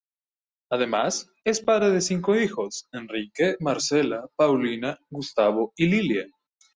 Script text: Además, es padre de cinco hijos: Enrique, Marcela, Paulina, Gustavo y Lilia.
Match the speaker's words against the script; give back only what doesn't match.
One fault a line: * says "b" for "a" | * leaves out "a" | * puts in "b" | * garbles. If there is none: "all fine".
all fine